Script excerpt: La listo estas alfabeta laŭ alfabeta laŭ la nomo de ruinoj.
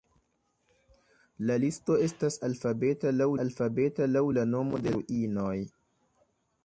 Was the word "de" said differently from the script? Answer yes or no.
no